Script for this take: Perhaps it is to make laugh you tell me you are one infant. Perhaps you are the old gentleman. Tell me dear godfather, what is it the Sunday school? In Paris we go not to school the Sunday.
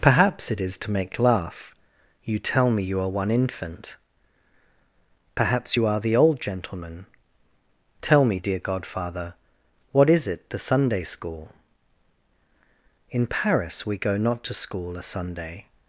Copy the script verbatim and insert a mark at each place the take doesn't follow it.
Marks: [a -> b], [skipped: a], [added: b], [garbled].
Perhaps it is to make laugh you tell me you are one infant. Perhaps you are the old gentleman. Tell me dear godfather, what is it the Sunday school? In Paris we go not to school [the -> a] Sunday.